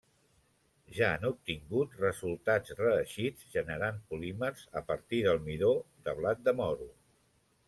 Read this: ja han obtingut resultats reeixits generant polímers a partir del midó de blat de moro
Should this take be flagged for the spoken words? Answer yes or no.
no